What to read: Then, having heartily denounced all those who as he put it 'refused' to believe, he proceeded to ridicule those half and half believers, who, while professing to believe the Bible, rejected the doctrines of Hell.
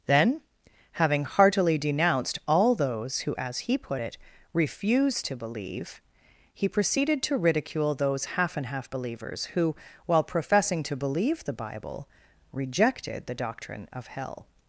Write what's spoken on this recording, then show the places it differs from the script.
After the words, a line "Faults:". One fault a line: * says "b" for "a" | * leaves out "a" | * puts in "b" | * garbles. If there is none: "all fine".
Then, having heartily denounced all those who as he put it 'refused' to believe, he proceeded to ridicule those half and half believers, who, while professing to believe the Bible, rejected the doctrine of Hell.
Faults:
* says "doctrine" for "doctrines"